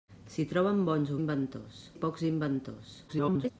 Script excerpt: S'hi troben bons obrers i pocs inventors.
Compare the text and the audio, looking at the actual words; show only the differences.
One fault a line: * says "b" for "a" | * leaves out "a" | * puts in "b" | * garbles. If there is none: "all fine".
* says "inventors" for "obrers"
* garbles